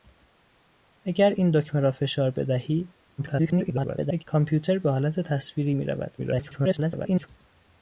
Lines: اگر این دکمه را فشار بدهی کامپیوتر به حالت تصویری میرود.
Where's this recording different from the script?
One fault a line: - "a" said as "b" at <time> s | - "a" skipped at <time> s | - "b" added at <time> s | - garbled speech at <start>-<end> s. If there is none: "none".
- garbled speech at 3.2-4.2 s
- garbled speech at 6.2-7.3 s